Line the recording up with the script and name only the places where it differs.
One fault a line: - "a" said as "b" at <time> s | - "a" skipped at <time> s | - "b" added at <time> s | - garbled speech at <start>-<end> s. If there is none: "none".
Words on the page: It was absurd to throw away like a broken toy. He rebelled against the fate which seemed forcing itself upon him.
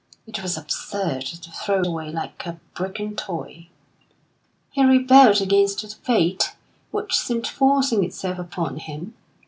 none